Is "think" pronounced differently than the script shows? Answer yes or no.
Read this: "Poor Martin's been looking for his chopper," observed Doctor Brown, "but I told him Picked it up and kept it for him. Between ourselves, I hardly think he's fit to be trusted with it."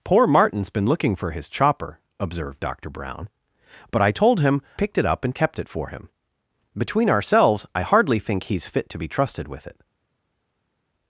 no